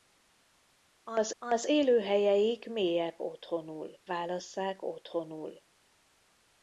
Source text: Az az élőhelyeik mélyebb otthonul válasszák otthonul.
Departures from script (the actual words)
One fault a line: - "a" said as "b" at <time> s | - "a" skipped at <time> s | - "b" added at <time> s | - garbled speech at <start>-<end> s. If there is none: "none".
none